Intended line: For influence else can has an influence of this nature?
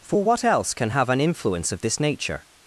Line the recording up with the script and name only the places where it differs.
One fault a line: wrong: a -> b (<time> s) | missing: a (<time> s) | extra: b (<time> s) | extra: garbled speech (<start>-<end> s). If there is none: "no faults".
wrong: influence -> what (0.2 s)
wrong: has -> have (0.9 s)